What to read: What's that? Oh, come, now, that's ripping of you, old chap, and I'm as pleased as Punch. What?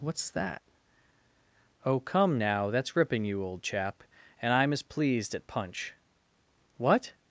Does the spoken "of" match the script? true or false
false